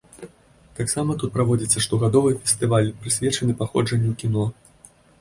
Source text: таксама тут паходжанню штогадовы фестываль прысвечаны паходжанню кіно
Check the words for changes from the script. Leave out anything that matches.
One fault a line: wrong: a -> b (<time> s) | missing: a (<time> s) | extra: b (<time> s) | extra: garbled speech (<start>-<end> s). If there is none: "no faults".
wrong: паходжанню -> праводзіцца (1.3 s)